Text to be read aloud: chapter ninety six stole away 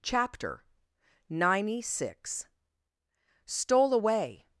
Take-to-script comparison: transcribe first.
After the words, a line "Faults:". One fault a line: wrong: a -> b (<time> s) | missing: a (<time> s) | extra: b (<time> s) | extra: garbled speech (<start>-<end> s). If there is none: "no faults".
chapter ninety six stole away
Faults:
no faults